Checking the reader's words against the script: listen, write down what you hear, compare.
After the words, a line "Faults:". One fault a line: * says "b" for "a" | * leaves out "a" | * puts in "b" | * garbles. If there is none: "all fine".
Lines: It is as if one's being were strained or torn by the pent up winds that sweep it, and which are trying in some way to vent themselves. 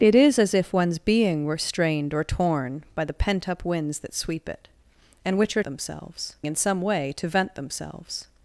It is as if one's being were strained or torn by the pent up winds that sweep it, and which are themselves in some way to vent themselves.
Faults:
* says "themselves" for "trying"